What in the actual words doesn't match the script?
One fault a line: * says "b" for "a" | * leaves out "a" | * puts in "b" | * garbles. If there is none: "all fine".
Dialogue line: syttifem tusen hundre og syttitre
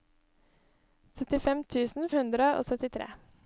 all fine